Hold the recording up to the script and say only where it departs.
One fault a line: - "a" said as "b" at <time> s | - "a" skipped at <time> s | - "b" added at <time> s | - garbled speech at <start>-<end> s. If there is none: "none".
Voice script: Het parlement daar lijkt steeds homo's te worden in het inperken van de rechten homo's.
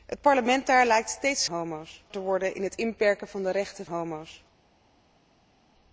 none